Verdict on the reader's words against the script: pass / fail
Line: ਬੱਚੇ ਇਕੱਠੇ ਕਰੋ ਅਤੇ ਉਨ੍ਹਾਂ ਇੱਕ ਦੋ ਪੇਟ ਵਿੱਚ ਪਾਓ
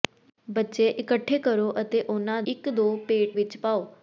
pass